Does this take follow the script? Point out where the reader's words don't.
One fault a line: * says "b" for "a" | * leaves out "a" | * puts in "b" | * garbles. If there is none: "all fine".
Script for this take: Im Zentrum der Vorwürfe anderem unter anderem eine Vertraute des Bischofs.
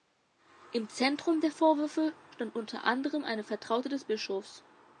* says "stand" for "anderem"